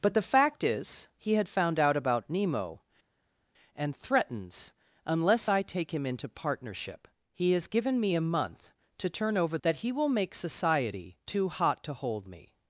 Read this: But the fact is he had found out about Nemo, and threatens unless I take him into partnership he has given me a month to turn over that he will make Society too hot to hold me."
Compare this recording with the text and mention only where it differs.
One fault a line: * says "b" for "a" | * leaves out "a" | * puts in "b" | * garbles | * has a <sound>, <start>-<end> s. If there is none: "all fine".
all fine